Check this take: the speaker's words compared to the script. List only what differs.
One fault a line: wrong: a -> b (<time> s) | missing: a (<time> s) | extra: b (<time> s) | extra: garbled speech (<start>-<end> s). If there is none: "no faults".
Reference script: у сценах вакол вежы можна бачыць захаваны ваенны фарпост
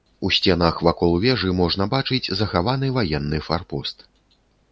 no faults